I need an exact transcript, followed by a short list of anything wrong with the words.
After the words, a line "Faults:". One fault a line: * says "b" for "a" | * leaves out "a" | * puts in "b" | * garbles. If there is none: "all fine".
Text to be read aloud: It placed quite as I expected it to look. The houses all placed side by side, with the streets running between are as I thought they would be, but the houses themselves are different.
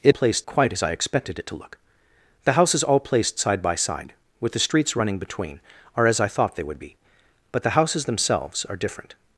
It placed quite as I expected it to look. The houses all placed side by side, with the streets running between are as I thought they would be, but the houses themselves are different.
Faults:
all fine